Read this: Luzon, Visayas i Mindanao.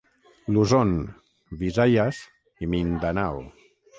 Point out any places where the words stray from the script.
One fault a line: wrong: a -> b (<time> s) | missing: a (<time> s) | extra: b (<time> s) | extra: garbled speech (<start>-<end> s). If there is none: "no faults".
no faults